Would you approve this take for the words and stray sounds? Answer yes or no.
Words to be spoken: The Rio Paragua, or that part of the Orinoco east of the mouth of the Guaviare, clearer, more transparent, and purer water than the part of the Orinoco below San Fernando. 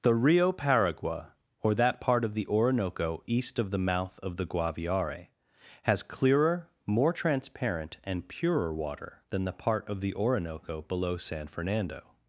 no